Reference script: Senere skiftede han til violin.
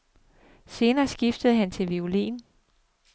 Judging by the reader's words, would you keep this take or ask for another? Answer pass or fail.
pass